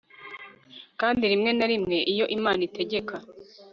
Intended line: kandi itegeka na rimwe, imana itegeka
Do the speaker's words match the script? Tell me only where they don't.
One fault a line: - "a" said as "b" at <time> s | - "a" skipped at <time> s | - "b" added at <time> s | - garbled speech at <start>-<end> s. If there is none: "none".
- "itegeka" said as "rimwe" at 1.3 s
- "iyo" added at 2.1 s